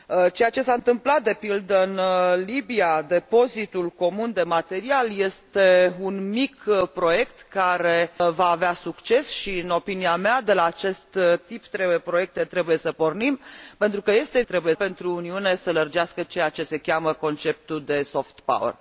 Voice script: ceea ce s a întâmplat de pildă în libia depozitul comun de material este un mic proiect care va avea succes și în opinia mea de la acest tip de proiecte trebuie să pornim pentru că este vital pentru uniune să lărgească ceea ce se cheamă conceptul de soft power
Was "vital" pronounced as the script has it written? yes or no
no